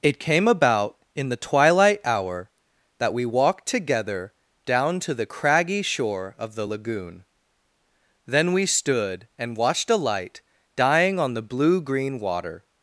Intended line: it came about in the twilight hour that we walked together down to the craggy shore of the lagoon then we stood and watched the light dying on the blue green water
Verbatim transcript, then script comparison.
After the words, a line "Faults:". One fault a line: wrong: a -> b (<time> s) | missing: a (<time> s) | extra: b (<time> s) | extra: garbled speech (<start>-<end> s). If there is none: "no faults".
it came about in the twilight hour that we walked together down to the craggy shore of the lagoon then we stood and watched a light dying on the blue green water
Faults:
wrong: the -> a (9.9 s)